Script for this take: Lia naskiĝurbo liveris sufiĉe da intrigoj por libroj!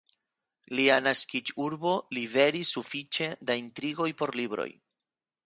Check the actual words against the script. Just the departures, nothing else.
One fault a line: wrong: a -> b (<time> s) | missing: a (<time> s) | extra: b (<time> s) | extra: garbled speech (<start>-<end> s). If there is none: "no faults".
no faults